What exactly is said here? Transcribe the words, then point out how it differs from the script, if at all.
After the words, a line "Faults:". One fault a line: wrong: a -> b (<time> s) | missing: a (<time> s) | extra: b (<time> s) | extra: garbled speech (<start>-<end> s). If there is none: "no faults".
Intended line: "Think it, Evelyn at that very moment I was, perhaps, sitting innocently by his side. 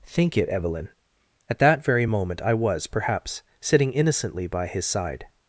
"Think it, Evelyn at that very moment I was, perhaps, sitting innocently by his side.
Faults:
no faults